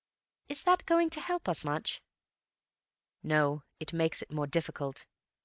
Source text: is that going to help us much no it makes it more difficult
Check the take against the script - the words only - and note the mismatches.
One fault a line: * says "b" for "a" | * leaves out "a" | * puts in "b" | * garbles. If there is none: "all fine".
all fine